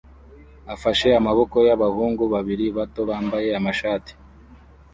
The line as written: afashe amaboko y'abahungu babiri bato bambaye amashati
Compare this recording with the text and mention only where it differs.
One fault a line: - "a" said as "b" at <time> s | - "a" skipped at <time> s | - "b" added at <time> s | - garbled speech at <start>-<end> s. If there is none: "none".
none